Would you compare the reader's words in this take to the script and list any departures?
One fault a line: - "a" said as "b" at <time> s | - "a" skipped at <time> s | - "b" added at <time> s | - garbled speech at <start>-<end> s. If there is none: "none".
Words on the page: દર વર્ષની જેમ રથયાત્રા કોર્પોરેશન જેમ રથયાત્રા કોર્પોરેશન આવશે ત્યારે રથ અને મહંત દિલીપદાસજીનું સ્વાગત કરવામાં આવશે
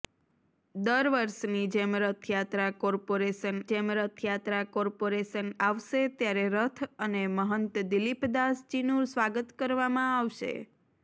none